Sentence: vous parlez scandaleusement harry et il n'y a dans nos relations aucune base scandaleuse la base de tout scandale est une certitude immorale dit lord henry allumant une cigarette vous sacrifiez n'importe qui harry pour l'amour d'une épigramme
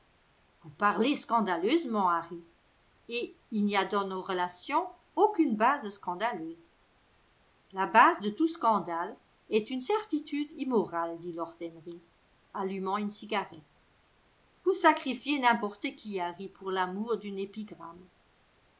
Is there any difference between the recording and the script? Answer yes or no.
no